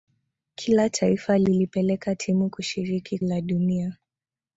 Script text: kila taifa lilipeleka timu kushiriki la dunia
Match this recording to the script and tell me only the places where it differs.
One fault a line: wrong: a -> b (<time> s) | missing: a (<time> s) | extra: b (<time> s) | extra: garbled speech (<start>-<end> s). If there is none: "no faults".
no faults